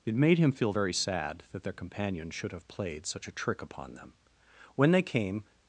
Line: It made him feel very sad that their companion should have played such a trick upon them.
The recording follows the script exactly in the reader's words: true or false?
false